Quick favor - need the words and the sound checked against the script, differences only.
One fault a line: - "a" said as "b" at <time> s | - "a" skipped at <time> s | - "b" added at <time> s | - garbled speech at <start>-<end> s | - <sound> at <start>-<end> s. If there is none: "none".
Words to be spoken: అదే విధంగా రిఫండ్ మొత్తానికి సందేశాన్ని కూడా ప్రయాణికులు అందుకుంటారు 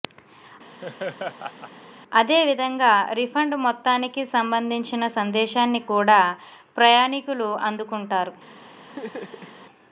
- laugh at 0.8-1.7 s
- "సంబంధించిన" added at 4.3 s
- laugh at 8.9-9.6 s